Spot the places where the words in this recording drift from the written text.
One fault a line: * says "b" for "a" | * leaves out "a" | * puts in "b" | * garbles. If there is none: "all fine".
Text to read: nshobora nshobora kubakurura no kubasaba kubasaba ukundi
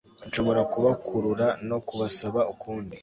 * leaves out "nshobora"
* leaves out "kubasaba"